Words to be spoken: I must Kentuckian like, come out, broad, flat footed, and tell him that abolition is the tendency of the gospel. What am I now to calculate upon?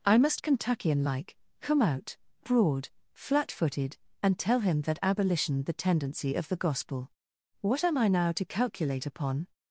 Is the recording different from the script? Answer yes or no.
yes